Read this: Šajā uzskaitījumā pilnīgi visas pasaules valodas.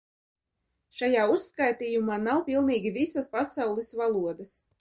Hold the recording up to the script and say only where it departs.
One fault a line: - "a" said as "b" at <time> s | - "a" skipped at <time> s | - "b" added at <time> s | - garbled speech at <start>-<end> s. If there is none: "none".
- "nav" added at 2.2 s